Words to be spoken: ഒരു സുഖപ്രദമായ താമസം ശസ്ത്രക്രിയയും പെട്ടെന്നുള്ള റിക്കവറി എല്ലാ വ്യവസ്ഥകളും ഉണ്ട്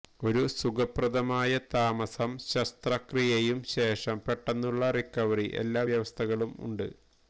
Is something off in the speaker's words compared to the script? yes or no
yes